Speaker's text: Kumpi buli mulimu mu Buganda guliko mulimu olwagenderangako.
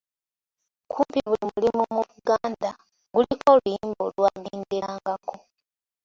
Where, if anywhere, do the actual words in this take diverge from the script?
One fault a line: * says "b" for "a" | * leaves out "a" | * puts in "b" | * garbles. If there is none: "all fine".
* says "oluyimba" for "mulimu"